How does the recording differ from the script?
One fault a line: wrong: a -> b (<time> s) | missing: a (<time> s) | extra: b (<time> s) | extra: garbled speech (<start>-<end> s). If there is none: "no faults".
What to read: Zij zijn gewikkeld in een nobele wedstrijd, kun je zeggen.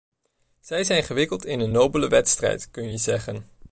no faults